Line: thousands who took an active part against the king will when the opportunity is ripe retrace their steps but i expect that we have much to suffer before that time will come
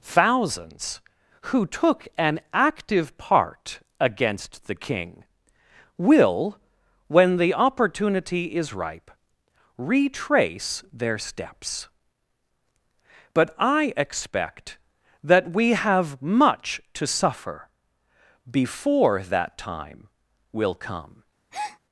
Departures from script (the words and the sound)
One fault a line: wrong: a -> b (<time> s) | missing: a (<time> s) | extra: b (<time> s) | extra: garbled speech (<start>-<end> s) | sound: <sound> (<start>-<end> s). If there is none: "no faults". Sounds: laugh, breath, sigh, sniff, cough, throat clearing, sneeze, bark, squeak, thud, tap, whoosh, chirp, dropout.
sound: breath (21.5-21.8 s)